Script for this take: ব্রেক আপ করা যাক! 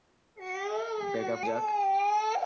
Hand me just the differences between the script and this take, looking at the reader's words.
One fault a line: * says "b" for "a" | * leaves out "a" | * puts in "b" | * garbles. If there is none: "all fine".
* leaves out "করা"